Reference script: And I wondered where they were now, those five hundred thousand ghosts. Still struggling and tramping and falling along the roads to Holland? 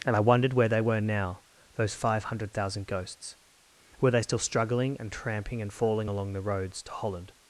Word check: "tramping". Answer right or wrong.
right